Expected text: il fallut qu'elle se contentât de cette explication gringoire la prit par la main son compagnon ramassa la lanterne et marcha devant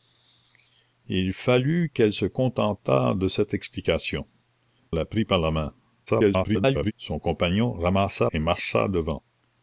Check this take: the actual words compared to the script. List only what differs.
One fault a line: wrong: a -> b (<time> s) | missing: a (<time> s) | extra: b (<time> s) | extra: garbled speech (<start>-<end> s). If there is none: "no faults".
missing: gringoire (4.3 s)
extra: garbled speech (6.1-6.9 s)
missing: la lanterne (8.3 s)